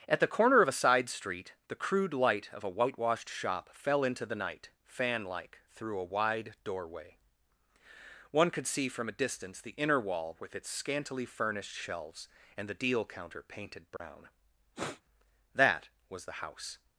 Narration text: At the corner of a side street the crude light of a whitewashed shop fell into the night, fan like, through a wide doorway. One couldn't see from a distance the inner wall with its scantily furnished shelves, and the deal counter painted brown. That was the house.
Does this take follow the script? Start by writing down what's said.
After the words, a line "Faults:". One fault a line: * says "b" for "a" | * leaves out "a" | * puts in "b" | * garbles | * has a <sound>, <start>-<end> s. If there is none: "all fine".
At the corner of a side street the crude light of a whitewashed shop fell into the night, fan like, through a wide doorway. One could see from a distance the inner wall with its scantily furnished shelves, and the deal counter painted brown. That was the house.
Faults:
* says "could" for "couldn't"
* has a dropout, 14.0-14.0 s
* has a sniff, 14.8-15.0 s